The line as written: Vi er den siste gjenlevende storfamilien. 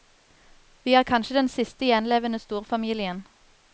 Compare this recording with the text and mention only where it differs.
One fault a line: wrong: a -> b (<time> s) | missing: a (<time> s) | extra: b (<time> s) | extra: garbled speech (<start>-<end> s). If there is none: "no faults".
extra: kanskje (1.1 s)